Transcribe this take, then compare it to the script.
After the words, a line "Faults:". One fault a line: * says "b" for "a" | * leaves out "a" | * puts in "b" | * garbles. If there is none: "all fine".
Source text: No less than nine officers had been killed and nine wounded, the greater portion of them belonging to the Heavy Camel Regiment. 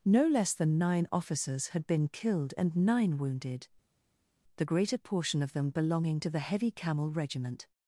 No less than nine officers had been killed and nine wounded, the greater portion of them belonging to the Heavy Camel Regiment.
Faults:
all fine